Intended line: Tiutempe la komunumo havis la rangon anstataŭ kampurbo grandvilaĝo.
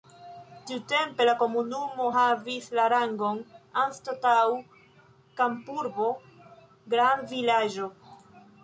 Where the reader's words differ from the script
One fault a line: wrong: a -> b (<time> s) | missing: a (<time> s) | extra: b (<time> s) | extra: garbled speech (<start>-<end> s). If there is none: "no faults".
no faults